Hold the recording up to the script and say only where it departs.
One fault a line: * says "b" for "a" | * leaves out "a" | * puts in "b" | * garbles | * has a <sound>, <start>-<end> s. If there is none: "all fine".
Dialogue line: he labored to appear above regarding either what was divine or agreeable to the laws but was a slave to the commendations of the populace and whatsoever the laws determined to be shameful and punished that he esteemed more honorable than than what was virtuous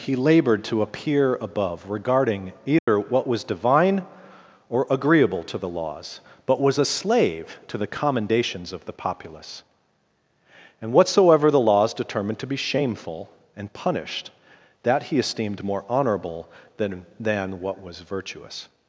* has a dropout, 2.8-2.9 s